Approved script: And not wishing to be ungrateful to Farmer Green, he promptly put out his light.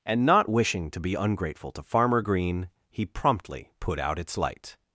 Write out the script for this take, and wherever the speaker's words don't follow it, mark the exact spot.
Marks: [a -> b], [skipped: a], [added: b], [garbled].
And not wishing to be ungrateful to Farmer Green, he promptly put out [his -> its] light.